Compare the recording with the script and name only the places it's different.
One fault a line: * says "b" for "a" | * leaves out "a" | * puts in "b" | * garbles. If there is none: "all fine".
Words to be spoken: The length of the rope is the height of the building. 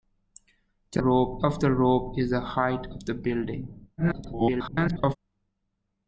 * says "rope" for "length"
* garbles